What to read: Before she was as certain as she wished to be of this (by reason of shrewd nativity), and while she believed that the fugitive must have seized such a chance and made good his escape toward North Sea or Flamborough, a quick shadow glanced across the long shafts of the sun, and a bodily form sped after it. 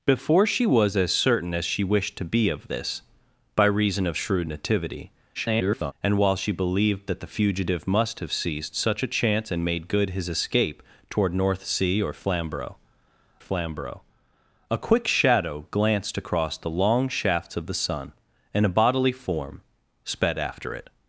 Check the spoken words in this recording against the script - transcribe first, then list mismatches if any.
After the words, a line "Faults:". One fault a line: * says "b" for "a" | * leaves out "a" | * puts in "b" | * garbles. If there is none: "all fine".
Before she was as certain as she wished to be of this (by reason of shrewd nativity), [garbled] and while she believed that the fugitive must have seized such a chance and made good his escape toward North Sea or Flamborough Flamborough, a quick shadow glanced across the long shafts of the sun, and a bodily form sped after it.
Faults:
* garbles
* puts in "Flamborough"